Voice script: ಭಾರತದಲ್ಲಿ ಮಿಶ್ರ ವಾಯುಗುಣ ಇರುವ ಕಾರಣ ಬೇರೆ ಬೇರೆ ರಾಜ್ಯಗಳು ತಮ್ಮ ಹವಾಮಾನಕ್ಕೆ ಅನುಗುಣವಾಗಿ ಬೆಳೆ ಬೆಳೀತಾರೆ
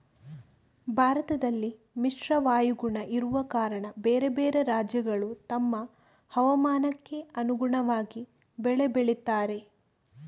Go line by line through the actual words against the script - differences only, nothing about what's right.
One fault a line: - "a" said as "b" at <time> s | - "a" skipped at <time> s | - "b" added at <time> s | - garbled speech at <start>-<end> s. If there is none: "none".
none